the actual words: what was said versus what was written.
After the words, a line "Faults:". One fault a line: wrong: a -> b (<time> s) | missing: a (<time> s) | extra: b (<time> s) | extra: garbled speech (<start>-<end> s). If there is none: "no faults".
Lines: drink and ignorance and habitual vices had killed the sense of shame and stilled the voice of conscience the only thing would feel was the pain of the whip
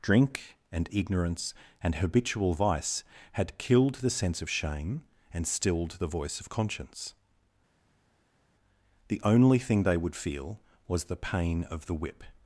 drink and ignorance and habitual vice had killed the sense of shame and stilled the voice of conscience the only thing they would feel was the pain of the whip
Faults:
wrong: vices -> vice (2.5 s)
extra: they (9.8 s)